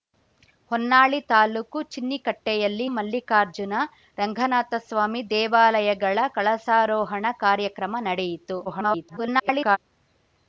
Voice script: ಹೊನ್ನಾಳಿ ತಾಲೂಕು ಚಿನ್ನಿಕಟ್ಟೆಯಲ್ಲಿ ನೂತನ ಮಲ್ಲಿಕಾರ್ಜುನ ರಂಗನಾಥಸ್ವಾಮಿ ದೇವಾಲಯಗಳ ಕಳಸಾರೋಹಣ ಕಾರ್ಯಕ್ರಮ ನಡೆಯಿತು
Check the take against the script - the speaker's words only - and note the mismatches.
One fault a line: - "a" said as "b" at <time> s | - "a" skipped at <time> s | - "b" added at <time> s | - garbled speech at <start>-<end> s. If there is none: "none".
- "ನೂತನ" skipped at 2.9 s
- garbled speech at 8.7-9.8 s